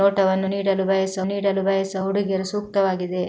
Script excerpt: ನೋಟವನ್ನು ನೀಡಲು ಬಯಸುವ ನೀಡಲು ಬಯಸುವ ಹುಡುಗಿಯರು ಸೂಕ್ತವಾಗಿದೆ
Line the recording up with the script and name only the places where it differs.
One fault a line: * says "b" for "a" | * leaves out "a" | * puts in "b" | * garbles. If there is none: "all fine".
all fine